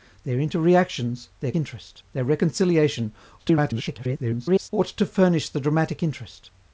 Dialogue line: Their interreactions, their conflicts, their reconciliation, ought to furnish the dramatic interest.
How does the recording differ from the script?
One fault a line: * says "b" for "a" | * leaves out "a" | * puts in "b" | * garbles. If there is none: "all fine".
* says "interest" for "conflicts"
* garbles